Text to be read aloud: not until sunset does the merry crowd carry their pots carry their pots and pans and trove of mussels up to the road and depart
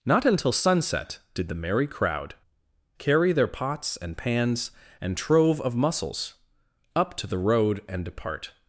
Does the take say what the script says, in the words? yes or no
no